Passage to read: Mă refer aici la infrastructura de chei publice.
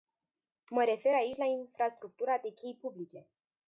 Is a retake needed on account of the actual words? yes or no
no